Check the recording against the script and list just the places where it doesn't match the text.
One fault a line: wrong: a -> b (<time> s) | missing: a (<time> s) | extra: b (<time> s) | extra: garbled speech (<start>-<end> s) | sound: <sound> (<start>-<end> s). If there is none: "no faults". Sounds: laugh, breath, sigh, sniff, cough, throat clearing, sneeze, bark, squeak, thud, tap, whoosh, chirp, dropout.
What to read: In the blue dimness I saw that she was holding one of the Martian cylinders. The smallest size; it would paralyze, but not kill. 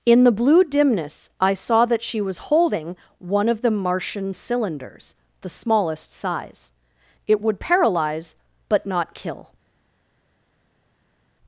no faults